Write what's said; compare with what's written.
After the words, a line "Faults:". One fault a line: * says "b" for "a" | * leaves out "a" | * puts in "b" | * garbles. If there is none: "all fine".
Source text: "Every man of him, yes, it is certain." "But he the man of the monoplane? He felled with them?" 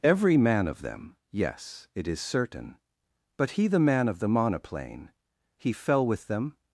"Every man of them, yes, it is certain." "But he the man of the monoplane? He fell with them?"
Faults:
* says "them" for "him"
* says "fell" for "felled"